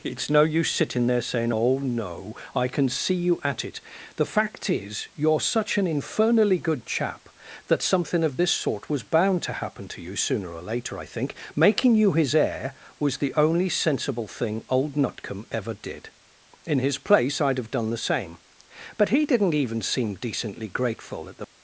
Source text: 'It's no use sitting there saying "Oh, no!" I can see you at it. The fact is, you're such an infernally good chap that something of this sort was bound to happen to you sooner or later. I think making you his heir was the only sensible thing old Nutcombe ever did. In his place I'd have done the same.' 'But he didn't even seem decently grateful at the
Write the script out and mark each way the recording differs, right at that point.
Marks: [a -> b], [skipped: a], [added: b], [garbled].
'It's no use sitting there saying "Oh, no!" I can see you at it. The fact is, you're such an infernally good chap that something of this sort was bound to happen to you sooner or later. I think making you his heir was the only sensible thing old Nutcombe ever did. In his place I'd have done the same.' 'But he didn't even seem decently grateful at the